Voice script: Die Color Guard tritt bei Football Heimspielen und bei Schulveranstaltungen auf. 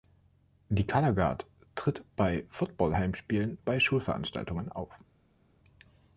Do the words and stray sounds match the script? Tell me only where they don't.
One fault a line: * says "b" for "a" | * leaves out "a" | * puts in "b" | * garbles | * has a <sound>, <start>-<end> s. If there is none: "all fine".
* leaves out "und"